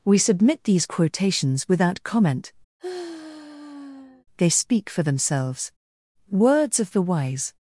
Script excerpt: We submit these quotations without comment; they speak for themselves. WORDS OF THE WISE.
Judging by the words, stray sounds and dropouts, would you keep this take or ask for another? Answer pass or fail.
fail